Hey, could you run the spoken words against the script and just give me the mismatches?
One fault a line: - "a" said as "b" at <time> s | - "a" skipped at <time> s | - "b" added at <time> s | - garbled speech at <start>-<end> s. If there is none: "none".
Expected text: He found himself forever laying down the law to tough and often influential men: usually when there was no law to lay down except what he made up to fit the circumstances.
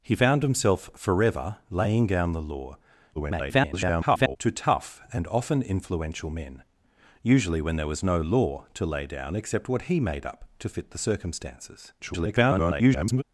- garbled speech at 3.1-4.4 s
- garbled speech at 12.0-13.2 s